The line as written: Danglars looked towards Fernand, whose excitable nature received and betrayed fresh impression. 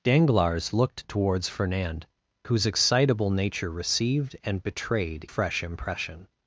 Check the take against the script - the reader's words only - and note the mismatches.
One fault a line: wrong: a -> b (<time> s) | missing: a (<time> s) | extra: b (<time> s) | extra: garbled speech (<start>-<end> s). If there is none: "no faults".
no faults